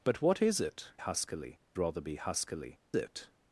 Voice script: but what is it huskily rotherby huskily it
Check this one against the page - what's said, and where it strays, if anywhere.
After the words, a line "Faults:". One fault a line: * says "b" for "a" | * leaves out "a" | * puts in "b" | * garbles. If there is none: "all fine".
but what is it huskily rotherby huskily it
Faults:
all fine